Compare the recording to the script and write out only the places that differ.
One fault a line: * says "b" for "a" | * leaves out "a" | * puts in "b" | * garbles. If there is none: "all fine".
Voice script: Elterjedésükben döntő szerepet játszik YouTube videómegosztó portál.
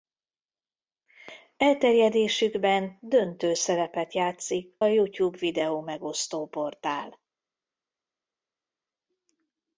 all fine